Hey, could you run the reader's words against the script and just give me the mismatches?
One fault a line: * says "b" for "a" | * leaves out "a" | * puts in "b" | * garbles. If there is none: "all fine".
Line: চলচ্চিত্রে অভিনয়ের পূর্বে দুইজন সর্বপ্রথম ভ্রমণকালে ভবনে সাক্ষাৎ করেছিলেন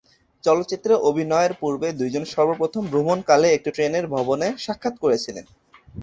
* puts in "একটি ট্রেনের"